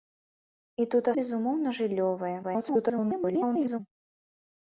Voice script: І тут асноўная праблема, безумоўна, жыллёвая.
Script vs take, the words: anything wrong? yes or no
yes